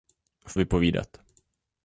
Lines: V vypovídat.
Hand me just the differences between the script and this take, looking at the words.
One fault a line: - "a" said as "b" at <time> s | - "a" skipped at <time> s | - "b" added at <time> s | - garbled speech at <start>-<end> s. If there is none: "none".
none